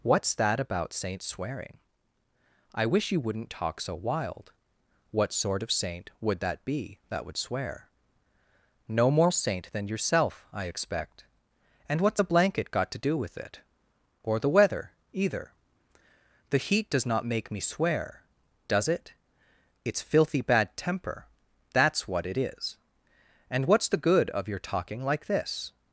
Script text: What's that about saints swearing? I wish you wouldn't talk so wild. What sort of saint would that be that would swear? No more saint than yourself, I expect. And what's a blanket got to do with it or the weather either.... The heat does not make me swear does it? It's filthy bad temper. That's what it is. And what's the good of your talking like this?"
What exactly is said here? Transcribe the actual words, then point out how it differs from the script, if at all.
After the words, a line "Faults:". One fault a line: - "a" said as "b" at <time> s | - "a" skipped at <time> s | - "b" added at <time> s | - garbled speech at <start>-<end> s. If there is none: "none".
What's that about saints swearing? I wish you wouldn't talk so wild. What sort of saint would that be that would swear? No more saint than yourself, I expect. And what's a blanket got to do with it or the weather either.... The heat does not make me swear does it? It's filthy bad temper. That's what it is. And what's the good of your talking like this?"
Faults:
none